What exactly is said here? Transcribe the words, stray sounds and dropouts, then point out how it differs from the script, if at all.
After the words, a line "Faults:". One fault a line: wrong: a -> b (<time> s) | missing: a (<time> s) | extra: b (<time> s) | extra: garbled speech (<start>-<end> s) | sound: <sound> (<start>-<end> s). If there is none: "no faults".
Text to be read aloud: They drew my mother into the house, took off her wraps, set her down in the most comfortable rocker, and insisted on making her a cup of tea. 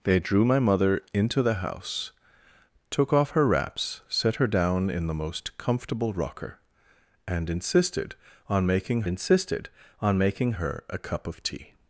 They drew my mother into the house, took off her wraps, set her down in the most comfortable rocker, and insisted on making insisted on making her a cup of tea.
Faults:
extra: insisted on making (9.1 s)